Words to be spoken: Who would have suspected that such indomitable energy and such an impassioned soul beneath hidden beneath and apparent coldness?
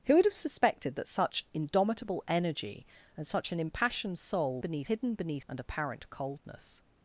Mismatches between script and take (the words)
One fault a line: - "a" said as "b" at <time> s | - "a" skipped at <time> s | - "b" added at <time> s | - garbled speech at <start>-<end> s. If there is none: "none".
none